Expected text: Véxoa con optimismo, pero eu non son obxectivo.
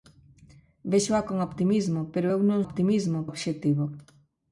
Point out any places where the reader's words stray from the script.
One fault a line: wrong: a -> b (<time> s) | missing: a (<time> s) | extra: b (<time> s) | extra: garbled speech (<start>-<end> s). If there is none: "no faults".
wrong: son -> optimismo (2.7 s)